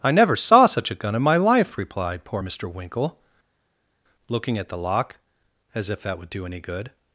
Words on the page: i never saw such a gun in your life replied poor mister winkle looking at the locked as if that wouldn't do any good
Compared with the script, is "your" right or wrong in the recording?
wrong